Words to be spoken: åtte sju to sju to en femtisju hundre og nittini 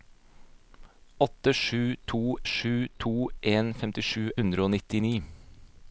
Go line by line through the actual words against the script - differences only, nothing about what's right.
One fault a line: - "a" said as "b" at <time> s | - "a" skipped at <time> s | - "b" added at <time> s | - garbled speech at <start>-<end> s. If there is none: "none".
none